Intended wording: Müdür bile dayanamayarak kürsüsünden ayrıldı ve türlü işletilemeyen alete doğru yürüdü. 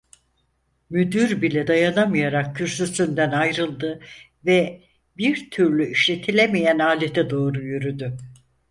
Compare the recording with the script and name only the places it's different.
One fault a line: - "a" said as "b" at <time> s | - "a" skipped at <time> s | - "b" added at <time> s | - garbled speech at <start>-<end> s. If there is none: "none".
- "bir" added at 5.2 s